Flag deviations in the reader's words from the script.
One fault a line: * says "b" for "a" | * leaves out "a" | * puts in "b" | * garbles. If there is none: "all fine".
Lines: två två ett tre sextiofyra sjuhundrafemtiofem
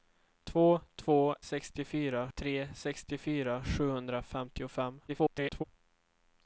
* says "sextiofyra" for "ett"
* garbles